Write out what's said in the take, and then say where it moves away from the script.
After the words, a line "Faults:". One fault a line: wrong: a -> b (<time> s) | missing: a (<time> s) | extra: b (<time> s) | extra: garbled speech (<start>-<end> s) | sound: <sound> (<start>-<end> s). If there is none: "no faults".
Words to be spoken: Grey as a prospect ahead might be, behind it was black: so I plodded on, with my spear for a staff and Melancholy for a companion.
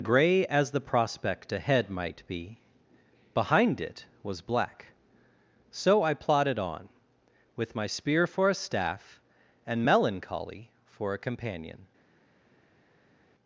Grey as the prospect ahead might be, behind it was black: so I plodded on, with my spear for a staff and Melancholy for a companion.
Faults:
wrong: a -> the (0.7 s)